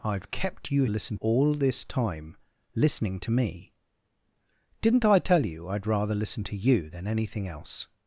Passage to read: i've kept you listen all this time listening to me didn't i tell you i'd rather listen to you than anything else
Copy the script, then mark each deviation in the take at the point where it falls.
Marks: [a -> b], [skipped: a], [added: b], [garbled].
i've kept you listen all this time listening to me didn't i tell you i'd rather listen to you than anything else